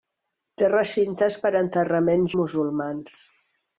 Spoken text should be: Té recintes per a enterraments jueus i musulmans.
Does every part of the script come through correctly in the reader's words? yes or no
no